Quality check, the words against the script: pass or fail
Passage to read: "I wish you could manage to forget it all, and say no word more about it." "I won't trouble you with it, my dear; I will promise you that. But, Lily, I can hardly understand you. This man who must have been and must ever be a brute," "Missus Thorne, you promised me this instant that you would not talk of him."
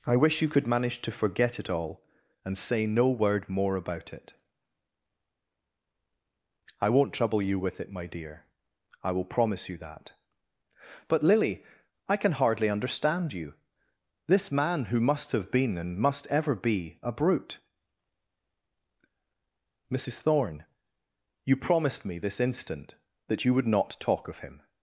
pass